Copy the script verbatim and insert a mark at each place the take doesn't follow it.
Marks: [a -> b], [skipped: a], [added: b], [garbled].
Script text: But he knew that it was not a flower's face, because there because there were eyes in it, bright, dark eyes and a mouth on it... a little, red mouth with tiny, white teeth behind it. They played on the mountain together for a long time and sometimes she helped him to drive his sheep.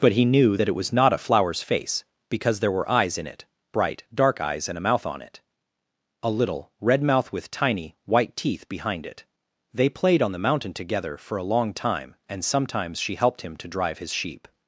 But he knew that it was not a flower's face, because there [skipped: because there] were eyes in it, bright, dark eyes and a mouth on it... a little, red mouth with tiny, white teeth behind it. They played on the mountain together for a long time and sometimes she helped him to drive his sheep.